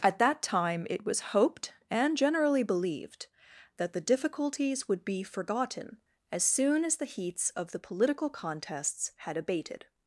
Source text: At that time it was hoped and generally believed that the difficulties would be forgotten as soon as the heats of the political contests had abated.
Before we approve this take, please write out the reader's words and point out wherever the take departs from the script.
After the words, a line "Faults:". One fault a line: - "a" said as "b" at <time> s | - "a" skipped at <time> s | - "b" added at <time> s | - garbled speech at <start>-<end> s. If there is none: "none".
At that time it was hoped and generally believed that the difficulties would be forgotten as soon as the heats of the political contests had abated.
Faults:
none